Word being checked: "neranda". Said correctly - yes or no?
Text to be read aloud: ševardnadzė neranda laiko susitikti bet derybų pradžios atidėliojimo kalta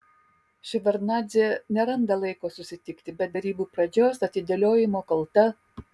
yes